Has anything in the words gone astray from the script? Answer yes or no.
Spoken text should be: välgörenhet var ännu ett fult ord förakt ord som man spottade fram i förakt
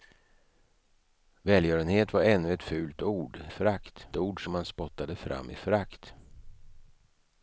no